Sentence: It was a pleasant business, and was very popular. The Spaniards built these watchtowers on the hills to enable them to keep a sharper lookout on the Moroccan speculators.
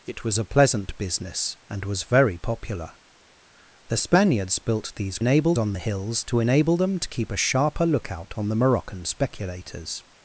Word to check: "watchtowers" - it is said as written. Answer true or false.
false